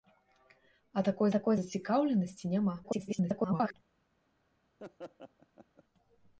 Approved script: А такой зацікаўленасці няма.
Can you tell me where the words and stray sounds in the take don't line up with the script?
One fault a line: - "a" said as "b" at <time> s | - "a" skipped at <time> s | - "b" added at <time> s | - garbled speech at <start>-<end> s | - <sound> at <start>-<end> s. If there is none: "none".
- "такой" added at 1.4 s
- garbled speech at 2.8-3.7 s
- laugh at 4.8-5.8 s